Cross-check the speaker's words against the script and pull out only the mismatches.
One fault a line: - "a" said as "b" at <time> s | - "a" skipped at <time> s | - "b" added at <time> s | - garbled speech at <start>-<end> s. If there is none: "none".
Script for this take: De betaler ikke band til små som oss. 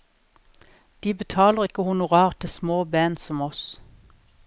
- "band" said as "honorar" at 1.8 s
- "band" added at 2.8 s